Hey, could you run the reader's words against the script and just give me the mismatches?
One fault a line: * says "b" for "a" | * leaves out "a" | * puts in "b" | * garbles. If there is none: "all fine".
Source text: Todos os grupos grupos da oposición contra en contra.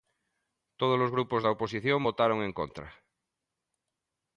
* leaves out "grupos"
* says "votaron" for "contra"